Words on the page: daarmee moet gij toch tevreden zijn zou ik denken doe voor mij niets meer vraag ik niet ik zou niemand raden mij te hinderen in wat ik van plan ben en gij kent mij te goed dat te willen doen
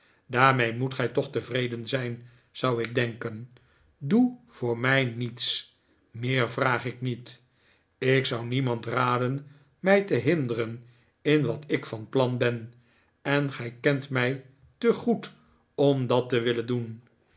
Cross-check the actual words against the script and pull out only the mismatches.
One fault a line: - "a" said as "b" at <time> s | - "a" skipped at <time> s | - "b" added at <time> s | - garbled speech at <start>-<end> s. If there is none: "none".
- "om" added at 15.7 s